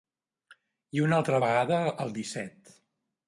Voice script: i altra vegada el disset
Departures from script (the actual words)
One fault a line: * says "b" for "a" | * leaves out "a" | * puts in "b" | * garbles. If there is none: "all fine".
* puts in "una"